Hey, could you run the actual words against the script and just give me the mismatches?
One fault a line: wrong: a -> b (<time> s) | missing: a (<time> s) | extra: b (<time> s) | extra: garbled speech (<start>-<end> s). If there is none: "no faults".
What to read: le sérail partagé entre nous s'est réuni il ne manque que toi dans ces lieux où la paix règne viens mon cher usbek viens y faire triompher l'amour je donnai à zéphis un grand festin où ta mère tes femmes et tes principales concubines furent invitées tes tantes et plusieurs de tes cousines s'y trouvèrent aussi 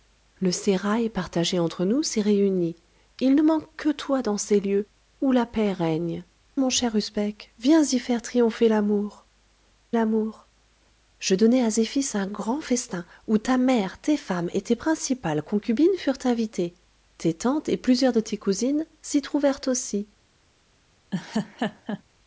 missing: viens (6.2 s)
extra: l'amour (9.9 s)